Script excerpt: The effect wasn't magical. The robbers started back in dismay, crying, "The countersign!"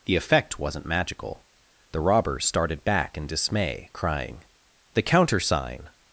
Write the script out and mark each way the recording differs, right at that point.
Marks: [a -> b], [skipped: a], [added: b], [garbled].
The effect wasn't magical. The robbers started back in dismay, crying, "The countersign!"